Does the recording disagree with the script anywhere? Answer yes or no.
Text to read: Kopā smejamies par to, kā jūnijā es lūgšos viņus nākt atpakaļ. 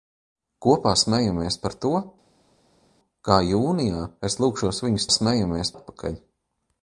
yes